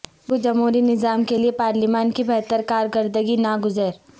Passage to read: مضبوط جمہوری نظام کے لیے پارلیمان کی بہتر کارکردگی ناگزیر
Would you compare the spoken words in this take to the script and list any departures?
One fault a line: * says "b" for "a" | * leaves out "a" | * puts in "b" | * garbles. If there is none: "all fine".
all fine